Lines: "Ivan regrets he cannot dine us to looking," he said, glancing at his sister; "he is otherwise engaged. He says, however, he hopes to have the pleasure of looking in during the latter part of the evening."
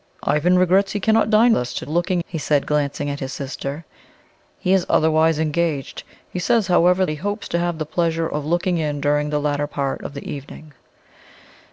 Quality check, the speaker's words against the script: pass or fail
pass